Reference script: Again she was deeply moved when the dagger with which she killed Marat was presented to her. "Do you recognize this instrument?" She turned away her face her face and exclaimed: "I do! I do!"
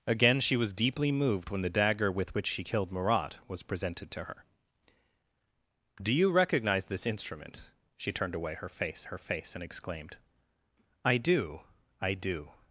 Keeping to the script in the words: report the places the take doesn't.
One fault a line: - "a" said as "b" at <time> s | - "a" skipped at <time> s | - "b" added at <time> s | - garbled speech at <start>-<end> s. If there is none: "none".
none